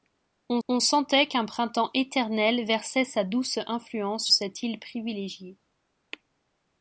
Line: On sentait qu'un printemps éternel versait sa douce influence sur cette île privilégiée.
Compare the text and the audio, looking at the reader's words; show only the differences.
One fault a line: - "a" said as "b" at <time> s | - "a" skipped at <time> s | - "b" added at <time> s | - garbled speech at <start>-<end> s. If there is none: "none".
- "on" added at 0.7 s
- "sur" skipped at 4.3 s